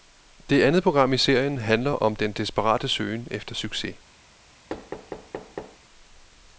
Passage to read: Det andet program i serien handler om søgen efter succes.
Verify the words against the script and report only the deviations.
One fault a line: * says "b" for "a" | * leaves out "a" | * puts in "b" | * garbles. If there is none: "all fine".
* puts in "den desperate"